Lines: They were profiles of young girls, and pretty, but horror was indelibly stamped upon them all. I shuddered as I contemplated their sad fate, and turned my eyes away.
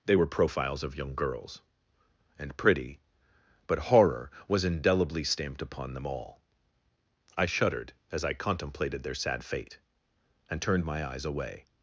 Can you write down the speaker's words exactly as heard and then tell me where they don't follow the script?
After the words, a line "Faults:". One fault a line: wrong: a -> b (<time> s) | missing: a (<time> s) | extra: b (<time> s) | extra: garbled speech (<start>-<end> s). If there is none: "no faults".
They were profiles of young girls, and pretty, but horror was indelibly stamped upon them all. I shuddered as I contemplated their sad fate, and turned my eyes away.
Faults:
no faults